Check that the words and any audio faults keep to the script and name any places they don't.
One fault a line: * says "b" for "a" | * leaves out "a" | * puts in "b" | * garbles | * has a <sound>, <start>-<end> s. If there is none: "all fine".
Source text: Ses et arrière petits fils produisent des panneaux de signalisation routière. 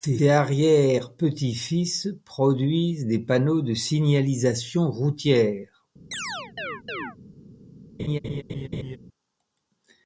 * has a chirp, 6.1-7.2 s
* has a laugh, 8.0-9.0 s